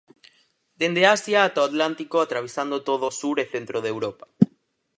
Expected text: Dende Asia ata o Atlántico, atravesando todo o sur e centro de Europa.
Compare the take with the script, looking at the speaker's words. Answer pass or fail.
pass